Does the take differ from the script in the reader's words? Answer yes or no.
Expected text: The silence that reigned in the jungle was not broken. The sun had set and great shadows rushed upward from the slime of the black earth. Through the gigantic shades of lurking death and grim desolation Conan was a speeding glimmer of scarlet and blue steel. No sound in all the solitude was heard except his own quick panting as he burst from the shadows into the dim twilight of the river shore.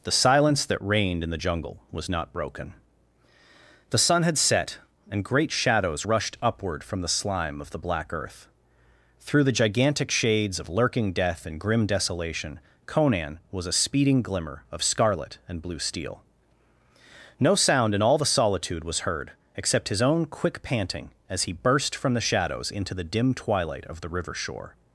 no